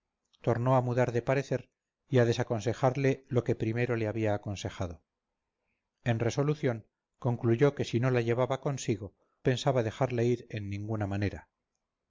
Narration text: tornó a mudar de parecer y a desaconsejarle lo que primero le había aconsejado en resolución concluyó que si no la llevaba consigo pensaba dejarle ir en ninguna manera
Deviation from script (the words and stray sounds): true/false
false